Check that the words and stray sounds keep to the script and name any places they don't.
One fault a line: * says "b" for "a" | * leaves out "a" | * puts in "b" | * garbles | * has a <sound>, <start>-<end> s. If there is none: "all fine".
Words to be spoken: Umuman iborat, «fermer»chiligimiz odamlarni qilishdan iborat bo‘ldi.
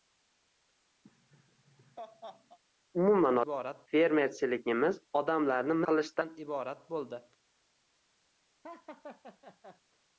* has a laugh, 1.0-2.6 s
* has a laugh, 8.6-9.8 s